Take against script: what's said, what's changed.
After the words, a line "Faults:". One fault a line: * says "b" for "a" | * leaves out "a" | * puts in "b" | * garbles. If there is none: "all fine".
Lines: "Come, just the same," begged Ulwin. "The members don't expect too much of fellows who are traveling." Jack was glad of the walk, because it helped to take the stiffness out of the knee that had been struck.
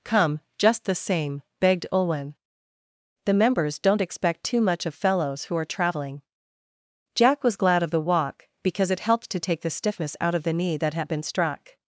"Come, just the same," begged Ulwin. "The members don't expect too much of fellows who are traveling." Jack was glad of the walk, because it helped to take the stiffness out of the knee that had been struck.
Faults:
all fine